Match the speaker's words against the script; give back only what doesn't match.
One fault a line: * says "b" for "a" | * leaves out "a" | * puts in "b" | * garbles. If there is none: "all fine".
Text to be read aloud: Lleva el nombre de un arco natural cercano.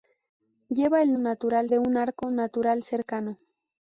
* says "natural" for "nombre"